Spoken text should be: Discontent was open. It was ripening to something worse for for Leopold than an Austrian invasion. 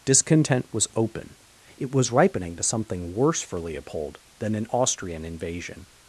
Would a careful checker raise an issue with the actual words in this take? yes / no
yes